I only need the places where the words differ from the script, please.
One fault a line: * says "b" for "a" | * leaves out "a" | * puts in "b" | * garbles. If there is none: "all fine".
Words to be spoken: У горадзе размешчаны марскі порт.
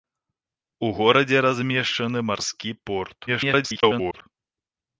* garbles